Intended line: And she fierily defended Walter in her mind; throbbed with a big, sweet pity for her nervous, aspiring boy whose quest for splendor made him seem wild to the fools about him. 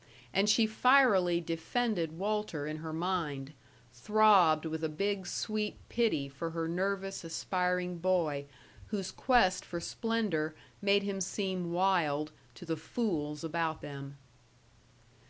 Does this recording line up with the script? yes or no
no